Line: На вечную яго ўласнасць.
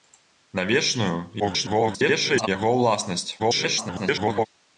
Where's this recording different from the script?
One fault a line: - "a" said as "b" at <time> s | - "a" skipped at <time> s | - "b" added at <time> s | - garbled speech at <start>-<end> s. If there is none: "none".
- garbled speech at 1.4-2.5 s
- garbled speech at 3.4-4.5 s